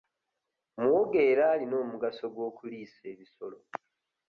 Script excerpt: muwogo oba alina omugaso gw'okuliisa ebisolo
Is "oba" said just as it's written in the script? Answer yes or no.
no